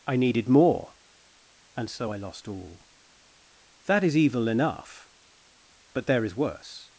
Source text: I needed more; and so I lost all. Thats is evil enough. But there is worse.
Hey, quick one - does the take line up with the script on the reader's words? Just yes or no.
no